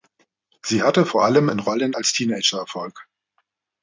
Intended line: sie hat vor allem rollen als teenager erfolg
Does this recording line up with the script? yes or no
no